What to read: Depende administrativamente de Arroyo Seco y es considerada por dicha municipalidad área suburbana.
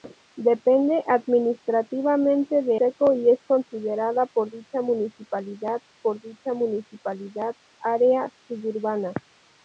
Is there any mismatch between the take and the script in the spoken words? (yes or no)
yes